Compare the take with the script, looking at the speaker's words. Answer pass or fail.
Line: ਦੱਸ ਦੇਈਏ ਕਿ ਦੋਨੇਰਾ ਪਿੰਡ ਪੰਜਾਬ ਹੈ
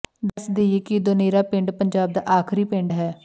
fail